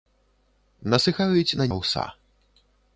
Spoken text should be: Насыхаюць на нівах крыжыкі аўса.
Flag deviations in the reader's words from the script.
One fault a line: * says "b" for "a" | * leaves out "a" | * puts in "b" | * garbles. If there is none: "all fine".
* leaves out "нівах крыжыкі"